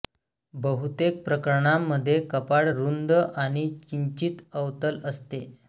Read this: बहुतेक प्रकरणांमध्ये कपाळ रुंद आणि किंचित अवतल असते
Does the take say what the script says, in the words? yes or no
yes